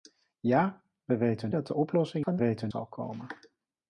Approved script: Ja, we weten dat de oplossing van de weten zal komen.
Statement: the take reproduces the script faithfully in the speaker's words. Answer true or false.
true